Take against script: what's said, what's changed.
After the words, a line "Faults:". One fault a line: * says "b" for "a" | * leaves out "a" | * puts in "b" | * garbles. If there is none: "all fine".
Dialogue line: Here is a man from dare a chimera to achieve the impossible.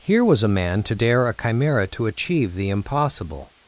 Here was a man to dare a chimera to achieve the impossible.
Faults:
* says "was" for "is"
* says "to" for "from"